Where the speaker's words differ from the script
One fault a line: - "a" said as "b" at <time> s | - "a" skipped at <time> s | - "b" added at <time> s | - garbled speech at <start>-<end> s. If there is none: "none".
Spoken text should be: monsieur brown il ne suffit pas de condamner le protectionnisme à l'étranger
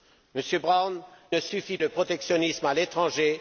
- "il" skipped at 1.0 s
- "pas de condamner" skipped at 1.8 s